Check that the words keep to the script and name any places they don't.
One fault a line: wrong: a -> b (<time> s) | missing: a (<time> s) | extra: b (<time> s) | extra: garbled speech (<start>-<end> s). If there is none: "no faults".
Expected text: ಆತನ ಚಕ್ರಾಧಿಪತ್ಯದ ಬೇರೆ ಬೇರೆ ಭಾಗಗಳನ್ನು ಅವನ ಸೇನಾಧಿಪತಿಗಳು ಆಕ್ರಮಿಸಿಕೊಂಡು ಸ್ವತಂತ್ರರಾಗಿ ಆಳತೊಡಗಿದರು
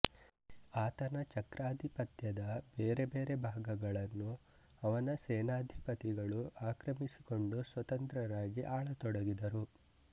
no faults